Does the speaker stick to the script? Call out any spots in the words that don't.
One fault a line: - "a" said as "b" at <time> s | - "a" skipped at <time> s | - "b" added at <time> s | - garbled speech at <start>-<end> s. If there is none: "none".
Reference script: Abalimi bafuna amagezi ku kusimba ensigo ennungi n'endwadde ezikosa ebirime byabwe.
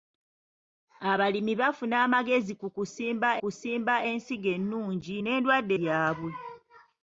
- "kusimba" added at 3.4 s
- "ezikosa ebirime" skipped at 5.7 s